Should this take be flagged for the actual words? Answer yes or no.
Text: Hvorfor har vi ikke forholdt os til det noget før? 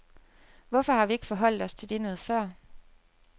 no